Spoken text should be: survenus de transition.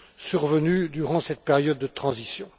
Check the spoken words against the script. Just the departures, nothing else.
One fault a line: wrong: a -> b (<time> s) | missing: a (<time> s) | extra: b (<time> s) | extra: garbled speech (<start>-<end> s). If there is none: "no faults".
extra: durant cette période (0.9 s)